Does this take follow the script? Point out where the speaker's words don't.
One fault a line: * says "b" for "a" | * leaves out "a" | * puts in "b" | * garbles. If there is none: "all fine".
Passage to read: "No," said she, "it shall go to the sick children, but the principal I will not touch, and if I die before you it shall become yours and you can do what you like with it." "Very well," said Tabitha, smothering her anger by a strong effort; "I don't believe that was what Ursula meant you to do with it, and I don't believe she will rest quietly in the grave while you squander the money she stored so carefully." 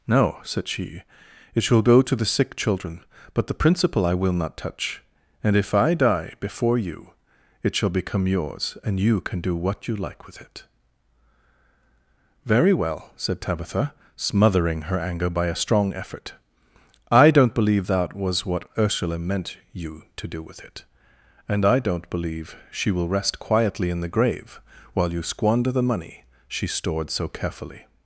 all fine